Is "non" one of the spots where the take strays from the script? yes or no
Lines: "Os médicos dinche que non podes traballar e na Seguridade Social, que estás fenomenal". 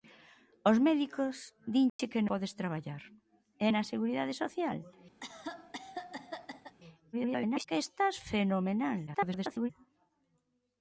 yes